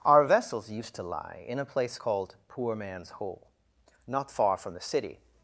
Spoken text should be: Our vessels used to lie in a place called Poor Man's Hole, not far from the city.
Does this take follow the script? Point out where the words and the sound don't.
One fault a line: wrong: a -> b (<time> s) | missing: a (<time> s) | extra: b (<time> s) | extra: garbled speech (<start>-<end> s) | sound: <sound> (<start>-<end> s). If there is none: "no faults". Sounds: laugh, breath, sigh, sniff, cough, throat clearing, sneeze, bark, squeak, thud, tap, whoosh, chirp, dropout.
no faults